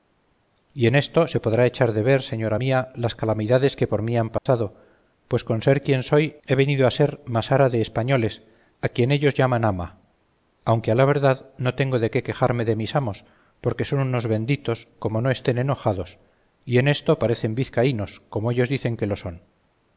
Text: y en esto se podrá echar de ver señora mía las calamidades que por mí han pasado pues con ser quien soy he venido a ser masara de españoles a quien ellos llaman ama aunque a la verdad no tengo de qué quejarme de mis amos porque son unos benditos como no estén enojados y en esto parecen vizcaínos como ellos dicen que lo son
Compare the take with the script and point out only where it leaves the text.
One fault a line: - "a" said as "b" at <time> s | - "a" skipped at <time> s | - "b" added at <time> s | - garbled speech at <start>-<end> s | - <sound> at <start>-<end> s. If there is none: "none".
- dropout at 4.4-4.5 s